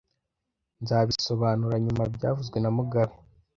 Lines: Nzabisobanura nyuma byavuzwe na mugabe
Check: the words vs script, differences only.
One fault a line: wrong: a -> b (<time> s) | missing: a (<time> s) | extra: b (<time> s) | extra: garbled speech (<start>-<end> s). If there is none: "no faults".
no faults